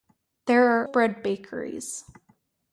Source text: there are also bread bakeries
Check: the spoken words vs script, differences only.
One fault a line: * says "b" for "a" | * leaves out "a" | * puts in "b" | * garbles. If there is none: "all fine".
* leaves out "also"